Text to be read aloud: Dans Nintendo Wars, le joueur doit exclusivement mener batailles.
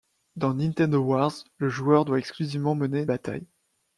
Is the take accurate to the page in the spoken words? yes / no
yes